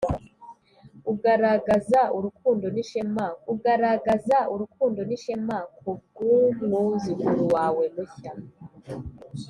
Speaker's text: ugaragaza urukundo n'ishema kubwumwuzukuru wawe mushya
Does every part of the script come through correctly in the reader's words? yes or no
no